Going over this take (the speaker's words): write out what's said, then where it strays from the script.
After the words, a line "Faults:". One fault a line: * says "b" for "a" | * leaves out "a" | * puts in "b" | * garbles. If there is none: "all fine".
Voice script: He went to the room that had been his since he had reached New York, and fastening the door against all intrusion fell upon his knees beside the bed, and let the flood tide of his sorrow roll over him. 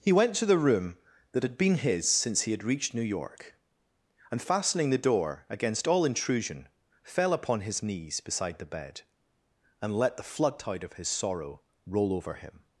He went to the room that had been his since he had reached New York, and fastening the door against all intrusion fell upon his knees beside the bed, and let the flood tide of his sorrow roll over him.
Faults:
all fine